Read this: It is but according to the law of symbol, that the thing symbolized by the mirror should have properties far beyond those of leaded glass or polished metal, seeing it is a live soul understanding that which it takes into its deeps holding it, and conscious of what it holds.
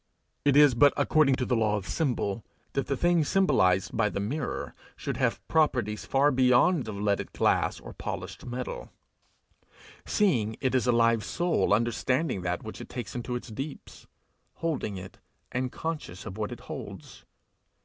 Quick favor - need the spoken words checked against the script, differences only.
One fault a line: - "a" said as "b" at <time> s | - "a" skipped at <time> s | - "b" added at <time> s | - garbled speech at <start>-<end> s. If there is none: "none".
- "those" skipped at 6.9 s